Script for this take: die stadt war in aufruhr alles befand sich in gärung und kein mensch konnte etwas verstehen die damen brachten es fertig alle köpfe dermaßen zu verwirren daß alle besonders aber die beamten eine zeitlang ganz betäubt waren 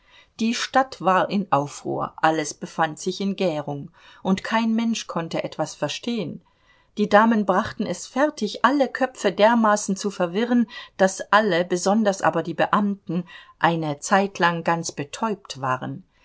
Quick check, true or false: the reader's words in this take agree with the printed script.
true